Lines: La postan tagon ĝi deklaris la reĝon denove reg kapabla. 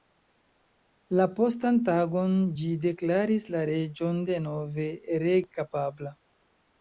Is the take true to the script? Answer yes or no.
yes